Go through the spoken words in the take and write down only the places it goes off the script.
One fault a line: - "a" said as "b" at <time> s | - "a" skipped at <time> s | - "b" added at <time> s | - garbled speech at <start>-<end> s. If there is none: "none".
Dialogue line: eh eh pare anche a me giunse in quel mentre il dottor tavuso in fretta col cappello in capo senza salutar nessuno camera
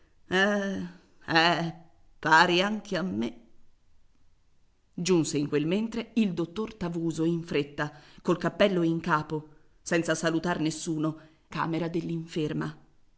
none